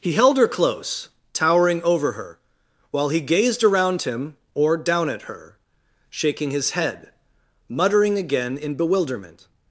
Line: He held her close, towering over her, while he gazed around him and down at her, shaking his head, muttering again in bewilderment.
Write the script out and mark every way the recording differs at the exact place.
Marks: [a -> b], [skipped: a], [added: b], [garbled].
He held her close, towering over her, while he gazed around him [and -> or] down at her, shaking his head, muttering again in bewilderment.